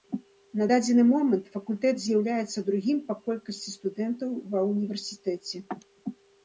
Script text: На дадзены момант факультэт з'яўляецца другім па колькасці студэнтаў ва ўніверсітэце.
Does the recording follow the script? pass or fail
pass